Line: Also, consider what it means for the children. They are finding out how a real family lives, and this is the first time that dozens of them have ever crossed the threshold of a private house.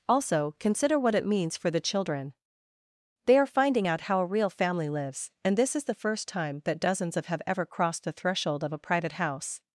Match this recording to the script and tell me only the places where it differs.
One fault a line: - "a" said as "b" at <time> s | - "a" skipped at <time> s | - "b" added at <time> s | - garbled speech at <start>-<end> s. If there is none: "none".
- "them" skipped at 7.2 s